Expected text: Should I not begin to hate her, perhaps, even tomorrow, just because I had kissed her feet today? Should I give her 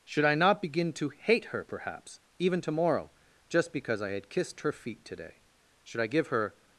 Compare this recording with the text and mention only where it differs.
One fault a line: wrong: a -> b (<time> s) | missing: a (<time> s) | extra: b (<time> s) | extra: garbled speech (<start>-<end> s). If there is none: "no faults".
no faults